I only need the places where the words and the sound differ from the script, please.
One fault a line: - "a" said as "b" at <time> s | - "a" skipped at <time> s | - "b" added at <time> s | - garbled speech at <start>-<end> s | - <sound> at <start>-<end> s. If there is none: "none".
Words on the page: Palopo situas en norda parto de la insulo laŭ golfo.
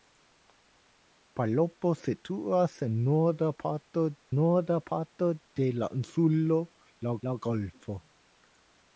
- "norda parto" added at 4.4 s
- "laŭ" added at 7.3 s